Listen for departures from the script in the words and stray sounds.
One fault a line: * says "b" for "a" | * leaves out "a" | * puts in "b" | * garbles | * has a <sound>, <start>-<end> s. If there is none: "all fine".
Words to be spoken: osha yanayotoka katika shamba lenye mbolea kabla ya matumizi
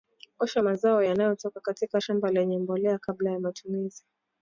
* puts in "mazao"